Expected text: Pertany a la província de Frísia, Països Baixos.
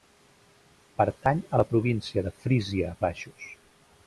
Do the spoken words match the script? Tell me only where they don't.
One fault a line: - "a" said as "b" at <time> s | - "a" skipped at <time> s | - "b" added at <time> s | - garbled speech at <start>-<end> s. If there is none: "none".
- "Països" skipped at 2.9 s